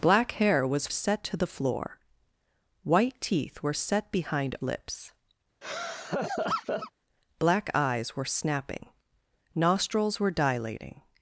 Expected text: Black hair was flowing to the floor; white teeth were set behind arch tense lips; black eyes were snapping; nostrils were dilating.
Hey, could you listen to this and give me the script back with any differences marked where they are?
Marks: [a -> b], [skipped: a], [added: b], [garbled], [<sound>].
Black hair was [flowing -> set] to the floor; white teeth were set behind [skipped: arch tense] lips; [laugh] black eyes were snapping; nostrils were dilating.